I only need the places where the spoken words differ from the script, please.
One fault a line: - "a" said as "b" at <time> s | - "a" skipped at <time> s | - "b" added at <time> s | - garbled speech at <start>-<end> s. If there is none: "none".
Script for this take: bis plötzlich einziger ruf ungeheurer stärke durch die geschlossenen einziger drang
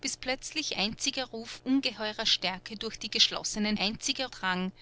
none